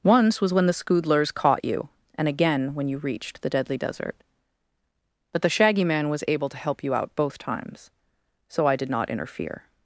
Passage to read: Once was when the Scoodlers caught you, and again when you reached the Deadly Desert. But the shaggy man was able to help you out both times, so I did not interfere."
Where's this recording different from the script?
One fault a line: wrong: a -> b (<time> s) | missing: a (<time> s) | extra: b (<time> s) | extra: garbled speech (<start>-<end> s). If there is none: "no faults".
no faults